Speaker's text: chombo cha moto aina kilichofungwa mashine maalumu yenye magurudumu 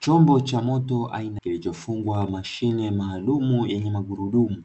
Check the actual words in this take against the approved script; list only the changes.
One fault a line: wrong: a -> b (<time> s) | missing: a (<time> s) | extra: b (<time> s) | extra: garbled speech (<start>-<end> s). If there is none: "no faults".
no faults